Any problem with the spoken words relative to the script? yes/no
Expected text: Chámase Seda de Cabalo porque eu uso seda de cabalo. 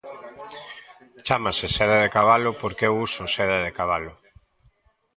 no